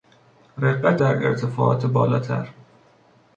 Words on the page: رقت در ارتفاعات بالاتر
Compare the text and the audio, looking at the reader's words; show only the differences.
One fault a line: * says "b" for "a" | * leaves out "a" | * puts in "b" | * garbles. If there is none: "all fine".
all fine